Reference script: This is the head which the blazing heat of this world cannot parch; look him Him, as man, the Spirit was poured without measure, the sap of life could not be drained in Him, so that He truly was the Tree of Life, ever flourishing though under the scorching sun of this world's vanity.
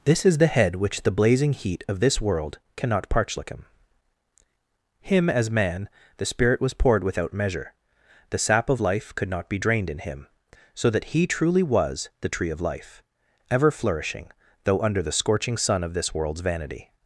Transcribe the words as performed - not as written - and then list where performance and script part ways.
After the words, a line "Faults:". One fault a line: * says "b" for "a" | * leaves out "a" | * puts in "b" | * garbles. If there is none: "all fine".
This is the head which the blazing heat of this world cannot parch; look him Him, as man, the Spirit was poured without measure, the sap of life could not be drained in Him, so that He truly was the Tree of Life, ever flourishing though under the scorching sun of this world's vanity.
Faults:
all fine